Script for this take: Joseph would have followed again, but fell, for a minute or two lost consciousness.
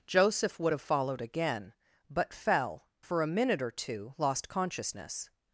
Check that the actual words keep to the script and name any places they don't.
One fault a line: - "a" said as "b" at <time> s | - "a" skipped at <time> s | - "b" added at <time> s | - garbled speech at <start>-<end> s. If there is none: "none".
none